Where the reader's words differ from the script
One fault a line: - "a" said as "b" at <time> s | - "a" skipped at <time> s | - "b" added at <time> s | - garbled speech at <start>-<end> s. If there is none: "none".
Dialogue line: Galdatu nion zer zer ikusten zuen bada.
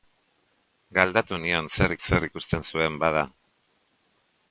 none